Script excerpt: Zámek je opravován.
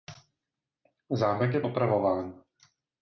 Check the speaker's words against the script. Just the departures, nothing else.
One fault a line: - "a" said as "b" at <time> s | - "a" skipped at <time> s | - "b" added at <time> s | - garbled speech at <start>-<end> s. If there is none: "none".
none